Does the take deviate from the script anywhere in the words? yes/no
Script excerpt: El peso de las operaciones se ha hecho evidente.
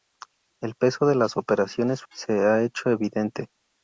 no